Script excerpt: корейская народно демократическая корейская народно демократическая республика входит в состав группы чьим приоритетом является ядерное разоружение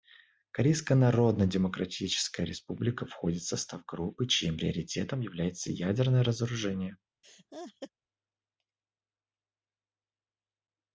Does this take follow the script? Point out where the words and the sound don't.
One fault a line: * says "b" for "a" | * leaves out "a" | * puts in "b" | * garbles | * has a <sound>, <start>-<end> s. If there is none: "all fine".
* leaves out "корейская народно демократическая"
* has a laugh, 7.2-7.9 s